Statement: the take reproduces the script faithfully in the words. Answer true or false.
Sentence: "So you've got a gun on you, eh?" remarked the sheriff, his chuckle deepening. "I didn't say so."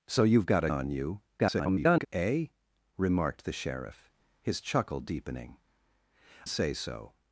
false